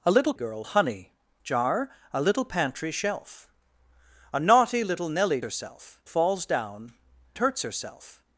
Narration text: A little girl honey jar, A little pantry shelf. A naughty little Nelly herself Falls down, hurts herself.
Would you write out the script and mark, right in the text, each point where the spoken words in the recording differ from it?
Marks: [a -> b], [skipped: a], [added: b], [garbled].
A little girl honey jar, A little pantry shelf. A naughty little Nelly herself Falls down, hurts herself.